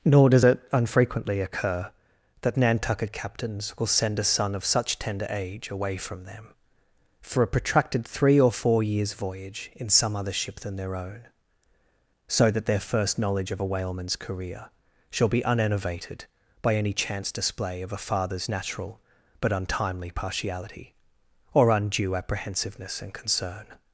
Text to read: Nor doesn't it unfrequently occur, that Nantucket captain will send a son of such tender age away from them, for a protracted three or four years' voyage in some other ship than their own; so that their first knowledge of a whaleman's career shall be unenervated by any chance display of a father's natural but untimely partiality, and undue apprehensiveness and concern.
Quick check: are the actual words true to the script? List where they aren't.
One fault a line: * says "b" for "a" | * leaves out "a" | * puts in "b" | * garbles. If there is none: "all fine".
* says "does" for "doesn't"
* says "captains" for "captain"
* says "or" for "and"